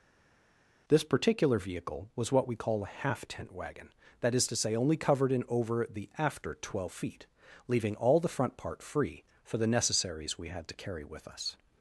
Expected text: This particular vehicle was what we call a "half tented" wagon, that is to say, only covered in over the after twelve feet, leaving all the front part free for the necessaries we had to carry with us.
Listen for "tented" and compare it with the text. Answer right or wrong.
wrong